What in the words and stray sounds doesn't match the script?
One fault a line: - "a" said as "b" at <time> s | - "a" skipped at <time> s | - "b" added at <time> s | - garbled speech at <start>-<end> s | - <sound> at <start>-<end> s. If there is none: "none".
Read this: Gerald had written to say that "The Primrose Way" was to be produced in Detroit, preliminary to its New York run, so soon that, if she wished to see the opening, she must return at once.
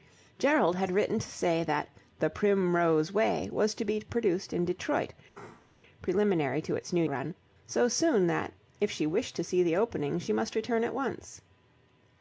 - sneeze at 5.3-5.8 s
- "York" skipped at 7.0 s